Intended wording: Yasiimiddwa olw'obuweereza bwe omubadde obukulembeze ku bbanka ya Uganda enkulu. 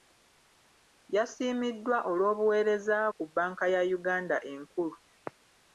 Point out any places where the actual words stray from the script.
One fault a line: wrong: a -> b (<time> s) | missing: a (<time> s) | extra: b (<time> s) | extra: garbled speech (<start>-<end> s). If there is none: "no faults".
missing: bwe omubadde obukulembeze (3.0 s)